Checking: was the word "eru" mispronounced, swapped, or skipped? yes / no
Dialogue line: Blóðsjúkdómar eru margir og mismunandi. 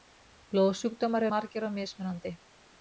yes